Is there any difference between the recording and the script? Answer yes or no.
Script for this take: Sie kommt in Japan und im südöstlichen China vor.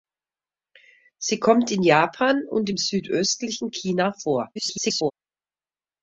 yes